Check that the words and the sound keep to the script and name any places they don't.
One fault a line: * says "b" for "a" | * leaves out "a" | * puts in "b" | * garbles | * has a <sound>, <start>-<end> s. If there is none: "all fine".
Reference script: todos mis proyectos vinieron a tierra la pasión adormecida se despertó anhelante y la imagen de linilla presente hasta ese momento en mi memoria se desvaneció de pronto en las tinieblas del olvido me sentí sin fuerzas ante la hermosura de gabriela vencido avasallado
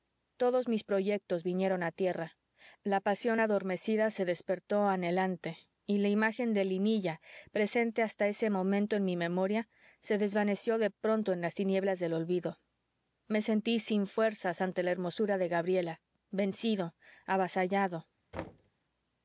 * has a thud, 18.3-18.7 s